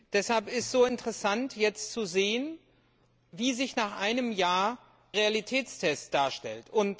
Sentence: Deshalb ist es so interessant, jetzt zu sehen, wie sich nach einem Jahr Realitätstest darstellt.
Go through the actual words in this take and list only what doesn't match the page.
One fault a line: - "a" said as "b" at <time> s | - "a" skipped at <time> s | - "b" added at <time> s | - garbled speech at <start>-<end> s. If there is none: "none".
none